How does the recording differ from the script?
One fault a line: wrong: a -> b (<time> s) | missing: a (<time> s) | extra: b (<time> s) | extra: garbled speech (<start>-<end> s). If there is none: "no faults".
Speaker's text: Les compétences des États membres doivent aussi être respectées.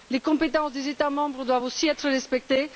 no faults